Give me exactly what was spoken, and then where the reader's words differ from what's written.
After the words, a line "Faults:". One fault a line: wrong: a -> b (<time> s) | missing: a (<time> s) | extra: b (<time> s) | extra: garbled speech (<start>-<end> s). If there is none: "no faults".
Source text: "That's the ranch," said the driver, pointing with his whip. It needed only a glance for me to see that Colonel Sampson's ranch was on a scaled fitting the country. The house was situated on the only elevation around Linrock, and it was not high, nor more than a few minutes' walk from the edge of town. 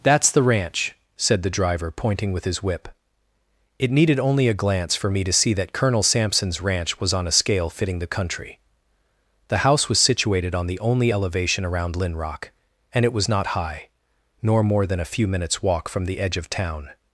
"That's the ranch," said the driver, pointing with his whip. It needed only a glance for me to see that Colonel Sampson's ranch was on a scale fitting the country. The house was situated on the only elevation around Linrock, and it was not high, nor more than a few minutes' walk from the edge of town.
Faults:
wrong: scaled -> scale (7.4 s)